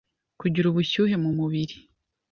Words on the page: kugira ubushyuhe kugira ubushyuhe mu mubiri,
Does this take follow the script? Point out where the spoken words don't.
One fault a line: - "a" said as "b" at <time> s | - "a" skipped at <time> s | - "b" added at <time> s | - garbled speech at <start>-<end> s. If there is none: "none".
- "kugira ubushyuhe" skipped at 1.1 s